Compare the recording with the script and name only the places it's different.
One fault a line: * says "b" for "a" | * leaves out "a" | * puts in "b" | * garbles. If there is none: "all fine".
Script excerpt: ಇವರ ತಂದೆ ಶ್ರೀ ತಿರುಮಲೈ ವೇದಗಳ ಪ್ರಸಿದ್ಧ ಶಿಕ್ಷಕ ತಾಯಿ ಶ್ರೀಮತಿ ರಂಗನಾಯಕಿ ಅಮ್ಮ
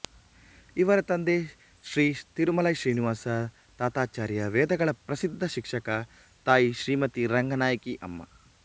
* puts in "ಶ್ರೀನಿವಾಸ ತಾತಾಚಾರ್ಯ"